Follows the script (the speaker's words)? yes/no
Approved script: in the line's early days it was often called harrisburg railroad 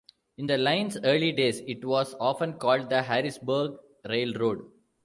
no